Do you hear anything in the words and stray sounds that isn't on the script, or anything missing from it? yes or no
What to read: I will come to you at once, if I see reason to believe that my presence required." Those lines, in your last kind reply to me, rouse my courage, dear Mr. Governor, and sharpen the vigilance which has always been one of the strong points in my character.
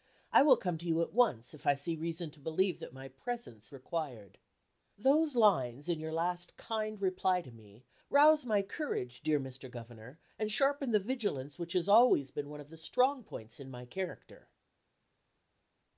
no